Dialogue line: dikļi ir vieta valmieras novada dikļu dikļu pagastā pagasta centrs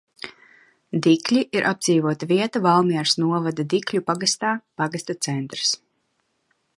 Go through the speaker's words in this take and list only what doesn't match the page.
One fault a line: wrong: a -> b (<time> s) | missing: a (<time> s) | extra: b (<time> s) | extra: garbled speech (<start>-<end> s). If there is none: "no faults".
extra: apdzīvota (1.7 s)
missing: dikļu (4.0 s)